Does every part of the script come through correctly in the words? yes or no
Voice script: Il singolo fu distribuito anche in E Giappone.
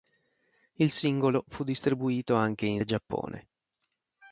yes